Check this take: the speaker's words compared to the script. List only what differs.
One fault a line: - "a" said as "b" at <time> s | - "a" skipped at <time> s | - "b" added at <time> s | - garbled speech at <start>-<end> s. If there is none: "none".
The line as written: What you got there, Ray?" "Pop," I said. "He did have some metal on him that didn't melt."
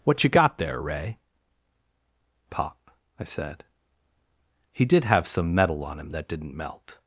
none